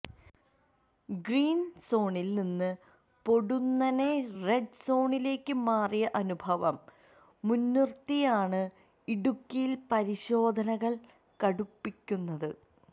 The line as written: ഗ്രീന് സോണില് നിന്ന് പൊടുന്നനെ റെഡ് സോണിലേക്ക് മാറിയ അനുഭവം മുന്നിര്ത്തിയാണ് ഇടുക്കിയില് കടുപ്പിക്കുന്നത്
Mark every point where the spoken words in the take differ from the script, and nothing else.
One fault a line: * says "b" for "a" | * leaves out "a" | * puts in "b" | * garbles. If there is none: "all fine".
* puts in "പരിശോധനകള്"